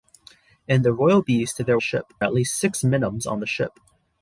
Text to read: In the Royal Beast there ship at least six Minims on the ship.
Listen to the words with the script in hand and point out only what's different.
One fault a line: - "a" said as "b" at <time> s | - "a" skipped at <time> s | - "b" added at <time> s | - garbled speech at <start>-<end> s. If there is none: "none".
none